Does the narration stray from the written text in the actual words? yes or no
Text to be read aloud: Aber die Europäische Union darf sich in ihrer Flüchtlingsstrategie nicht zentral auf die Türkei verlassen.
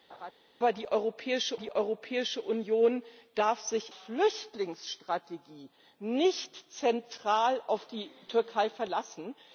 yes